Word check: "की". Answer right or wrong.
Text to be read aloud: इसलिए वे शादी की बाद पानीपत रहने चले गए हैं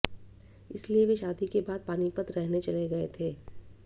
wrong